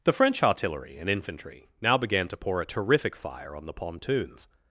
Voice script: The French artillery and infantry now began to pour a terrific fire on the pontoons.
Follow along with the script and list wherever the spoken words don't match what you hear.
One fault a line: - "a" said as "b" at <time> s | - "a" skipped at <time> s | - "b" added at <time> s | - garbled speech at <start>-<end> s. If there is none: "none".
none